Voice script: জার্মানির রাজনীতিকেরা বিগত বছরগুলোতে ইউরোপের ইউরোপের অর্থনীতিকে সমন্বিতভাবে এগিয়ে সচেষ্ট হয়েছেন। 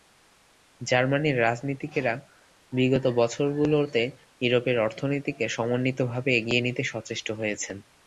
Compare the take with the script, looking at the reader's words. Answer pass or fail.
fail